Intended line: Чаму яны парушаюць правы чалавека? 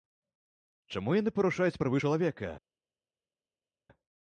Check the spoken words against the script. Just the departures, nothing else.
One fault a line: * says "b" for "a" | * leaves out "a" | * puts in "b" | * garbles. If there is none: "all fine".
all fine